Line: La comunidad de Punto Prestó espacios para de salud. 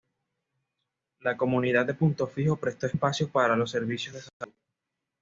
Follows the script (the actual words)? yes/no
no